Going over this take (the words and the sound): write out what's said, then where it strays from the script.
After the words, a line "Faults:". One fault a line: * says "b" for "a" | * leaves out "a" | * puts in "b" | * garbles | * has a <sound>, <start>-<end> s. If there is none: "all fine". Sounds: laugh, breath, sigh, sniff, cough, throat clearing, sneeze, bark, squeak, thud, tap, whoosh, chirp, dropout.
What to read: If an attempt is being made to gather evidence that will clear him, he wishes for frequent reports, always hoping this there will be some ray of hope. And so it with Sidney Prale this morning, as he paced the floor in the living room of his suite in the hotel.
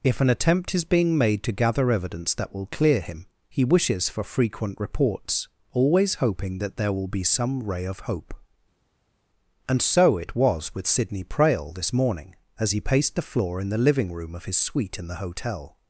If an attempt is being made to gather evidence that will clear him, he wishes for frequent reports, always hoping that there will be some ray of hope. And so it was with Sidney Prale this morning, as he paced the floor in the living room of his suite in the hotel.
Faults:
* says "that" for "this"
* puts in "was"